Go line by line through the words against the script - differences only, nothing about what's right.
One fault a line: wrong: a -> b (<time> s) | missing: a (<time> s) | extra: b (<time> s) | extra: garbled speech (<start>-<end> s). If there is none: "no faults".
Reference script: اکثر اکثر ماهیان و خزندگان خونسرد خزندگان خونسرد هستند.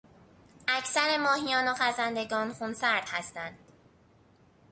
missing: اکثر (1.2 s)
missing: خزندگان خونسرد (3.1 s)